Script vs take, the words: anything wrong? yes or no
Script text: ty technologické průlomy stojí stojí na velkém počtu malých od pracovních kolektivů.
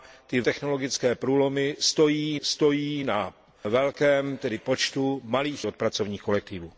no